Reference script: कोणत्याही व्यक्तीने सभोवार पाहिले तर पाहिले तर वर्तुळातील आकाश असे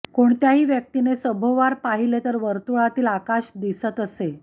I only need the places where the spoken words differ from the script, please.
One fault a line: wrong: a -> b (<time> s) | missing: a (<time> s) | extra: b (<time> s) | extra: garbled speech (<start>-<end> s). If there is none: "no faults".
missing: पाहिले तर (2.4 s)
extra: दिसत (3.6 s)